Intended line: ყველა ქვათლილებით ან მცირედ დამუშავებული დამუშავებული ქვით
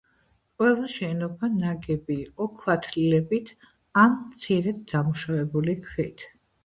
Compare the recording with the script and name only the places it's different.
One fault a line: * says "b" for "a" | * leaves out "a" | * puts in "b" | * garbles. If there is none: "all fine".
* puts in "შენობა ნაგები იყო"
* leaves out "დამუშავებული"